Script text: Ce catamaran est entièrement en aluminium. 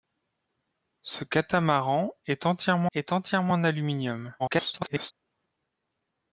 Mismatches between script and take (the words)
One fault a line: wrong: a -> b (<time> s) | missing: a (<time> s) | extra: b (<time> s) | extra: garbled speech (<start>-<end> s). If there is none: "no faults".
extra: est entièrement (2.9 s)
extra: garbled speech (4.4-5.1 s)